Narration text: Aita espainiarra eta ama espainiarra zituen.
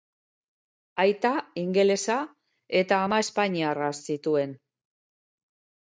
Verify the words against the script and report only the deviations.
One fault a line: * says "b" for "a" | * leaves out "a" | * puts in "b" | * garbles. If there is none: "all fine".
* says "ingelesa" for "espainiarra"